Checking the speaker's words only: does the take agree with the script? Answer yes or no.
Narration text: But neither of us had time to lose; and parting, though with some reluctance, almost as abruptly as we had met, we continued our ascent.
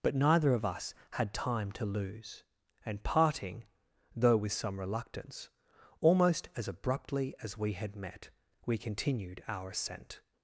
yes